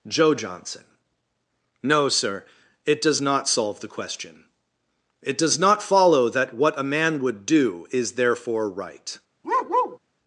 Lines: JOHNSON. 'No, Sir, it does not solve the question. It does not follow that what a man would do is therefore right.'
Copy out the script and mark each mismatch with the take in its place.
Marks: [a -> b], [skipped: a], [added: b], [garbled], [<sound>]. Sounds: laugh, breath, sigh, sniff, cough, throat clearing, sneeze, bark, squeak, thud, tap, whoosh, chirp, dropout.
[added: joe] JOHNSON. 'No, Sir, it does not solve the question. It does not follow that what a man would do is therefore right.' [bark]